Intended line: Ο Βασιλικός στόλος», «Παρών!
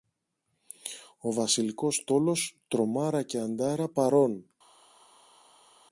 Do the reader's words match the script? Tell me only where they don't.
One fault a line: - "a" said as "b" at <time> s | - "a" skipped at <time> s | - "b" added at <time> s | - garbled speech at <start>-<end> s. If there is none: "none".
- "Τρομάρα και Αντάρα" added at 2.7 s